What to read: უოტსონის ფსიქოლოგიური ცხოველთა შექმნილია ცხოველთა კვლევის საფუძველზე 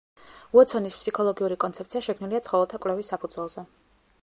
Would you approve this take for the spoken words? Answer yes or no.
no